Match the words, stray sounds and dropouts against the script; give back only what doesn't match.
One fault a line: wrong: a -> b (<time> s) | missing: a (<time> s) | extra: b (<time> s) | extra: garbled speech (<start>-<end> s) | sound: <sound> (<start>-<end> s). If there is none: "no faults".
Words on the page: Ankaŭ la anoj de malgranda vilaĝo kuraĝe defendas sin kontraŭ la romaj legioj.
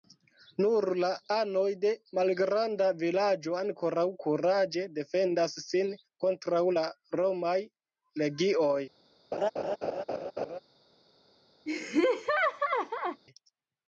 wrong: Ankaŭ -> Nur (0.6 s)
extra: ankoraŭ (3.6 s)
sound: laugh (9.3-10.6 s)
sound: laugh (11.7-13.2 s)